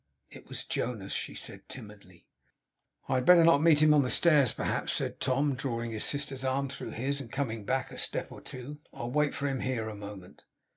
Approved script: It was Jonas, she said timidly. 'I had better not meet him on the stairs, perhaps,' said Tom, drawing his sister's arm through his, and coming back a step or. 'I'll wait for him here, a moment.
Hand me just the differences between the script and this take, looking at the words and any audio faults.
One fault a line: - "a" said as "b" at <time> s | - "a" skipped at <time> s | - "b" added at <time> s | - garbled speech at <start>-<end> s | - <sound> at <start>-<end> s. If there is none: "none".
- "two" added at 8.4 s